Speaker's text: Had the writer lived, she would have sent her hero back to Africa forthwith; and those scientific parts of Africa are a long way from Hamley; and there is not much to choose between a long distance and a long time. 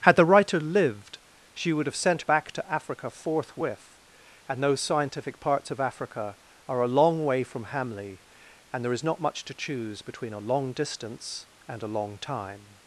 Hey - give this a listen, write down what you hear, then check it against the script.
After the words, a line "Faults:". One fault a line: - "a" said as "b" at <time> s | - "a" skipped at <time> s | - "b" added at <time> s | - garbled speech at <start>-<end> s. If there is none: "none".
Had the writer lived, she would have sent back to Africa forthwith; and those scientific parts of Africa are a long way from Hamley; and there is not much to choose between a long distance and a long time.
Faults:
- "her hero" skipped at 2.2 s